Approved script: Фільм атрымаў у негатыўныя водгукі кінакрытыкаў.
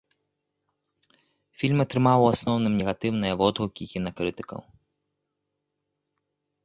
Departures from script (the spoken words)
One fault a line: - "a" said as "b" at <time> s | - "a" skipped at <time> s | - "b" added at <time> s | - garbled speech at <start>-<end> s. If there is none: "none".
- "асноўным" added at 2.3 s